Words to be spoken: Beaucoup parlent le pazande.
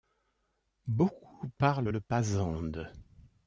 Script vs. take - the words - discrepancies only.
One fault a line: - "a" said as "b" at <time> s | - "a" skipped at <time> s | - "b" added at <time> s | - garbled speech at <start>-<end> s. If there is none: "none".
none